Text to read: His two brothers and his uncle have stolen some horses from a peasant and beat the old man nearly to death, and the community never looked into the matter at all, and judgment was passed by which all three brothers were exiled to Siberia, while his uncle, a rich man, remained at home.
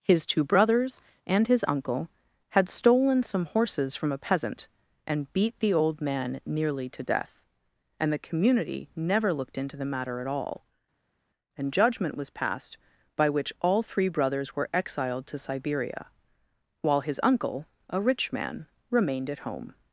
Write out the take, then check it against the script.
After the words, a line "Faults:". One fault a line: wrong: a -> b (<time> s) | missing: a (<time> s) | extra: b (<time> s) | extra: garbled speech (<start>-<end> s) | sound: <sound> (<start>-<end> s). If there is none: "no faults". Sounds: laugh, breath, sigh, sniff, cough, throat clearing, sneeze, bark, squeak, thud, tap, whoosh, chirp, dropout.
His two brothers and his uncle had stolen some horses from a peasant and beat the old man nearly to death, and the community never looked into the matter at all, and judgment was passed by which all three brothers were exiled to Siberia, while his uncle, a rich man, remained at home.
Faults:
wrong: have -> had (2.5 s)